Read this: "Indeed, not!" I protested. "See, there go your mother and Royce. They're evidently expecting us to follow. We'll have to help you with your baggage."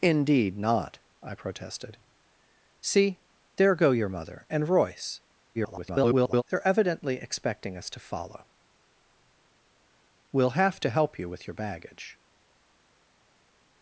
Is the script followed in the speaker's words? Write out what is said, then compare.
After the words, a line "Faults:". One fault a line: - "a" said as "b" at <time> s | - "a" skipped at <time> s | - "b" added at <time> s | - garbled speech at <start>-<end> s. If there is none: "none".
"Indeed, not!" I protested. "See, there go your mother and Royce. [garbled] They're evidently expecting us to follow. We'll have to help you with your baggage."
Faults:
- garbled speech at 5.5-6.4 s